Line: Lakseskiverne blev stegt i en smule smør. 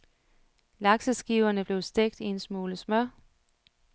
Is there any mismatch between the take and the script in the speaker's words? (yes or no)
no